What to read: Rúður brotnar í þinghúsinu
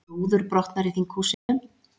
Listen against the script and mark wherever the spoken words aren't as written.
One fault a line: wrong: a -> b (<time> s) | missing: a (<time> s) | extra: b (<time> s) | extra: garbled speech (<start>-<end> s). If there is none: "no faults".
no faults